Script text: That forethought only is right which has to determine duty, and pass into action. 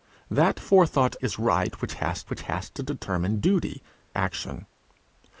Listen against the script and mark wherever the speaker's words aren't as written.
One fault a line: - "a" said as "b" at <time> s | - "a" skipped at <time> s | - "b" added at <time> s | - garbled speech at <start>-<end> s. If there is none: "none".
- "only" skipped at 1.1 s
- "which has" added at 2.3 s
- "and pass into" skipped at 3.8 s